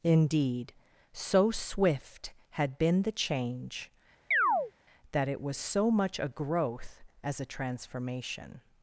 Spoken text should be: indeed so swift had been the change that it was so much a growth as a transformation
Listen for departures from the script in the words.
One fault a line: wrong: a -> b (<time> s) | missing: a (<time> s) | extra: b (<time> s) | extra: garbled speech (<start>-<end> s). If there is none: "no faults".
no faults